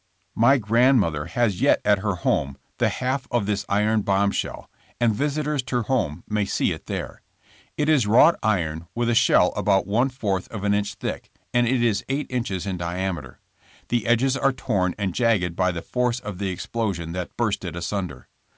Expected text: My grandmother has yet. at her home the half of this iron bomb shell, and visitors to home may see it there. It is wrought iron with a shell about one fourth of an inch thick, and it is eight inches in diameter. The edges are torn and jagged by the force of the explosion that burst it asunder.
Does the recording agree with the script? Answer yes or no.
yes